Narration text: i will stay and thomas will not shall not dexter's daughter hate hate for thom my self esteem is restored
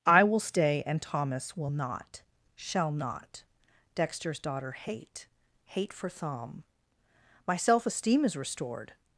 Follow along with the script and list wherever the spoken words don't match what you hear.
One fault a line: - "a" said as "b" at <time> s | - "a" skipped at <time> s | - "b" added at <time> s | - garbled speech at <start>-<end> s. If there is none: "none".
none